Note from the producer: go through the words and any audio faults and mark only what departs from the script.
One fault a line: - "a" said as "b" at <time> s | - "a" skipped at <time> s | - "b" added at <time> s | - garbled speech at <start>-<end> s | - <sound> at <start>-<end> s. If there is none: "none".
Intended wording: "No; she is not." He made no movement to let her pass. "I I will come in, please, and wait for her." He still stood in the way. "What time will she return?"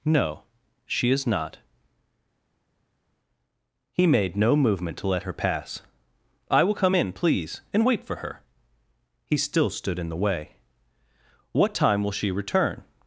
- "I" skipped at 6.6 s